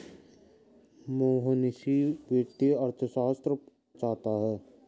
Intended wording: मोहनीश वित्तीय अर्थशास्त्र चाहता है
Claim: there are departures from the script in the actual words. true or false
false